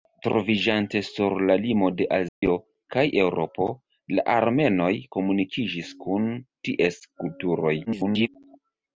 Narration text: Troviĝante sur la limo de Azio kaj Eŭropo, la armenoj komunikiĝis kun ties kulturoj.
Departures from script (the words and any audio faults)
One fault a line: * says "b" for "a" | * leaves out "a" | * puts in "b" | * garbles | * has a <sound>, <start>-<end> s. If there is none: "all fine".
* has a dropout, 2.3-2.4 s
* garbles